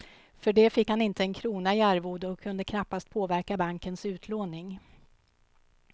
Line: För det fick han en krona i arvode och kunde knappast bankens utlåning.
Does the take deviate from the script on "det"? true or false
false